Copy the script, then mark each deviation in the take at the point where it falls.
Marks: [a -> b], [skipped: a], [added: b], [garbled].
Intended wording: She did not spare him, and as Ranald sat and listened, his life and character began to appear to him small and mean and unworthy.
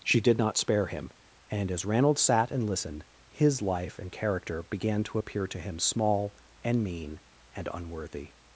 She did not spare him, and as Ranald sat and listened, his life and character began to appear to him small and mean and unworthy.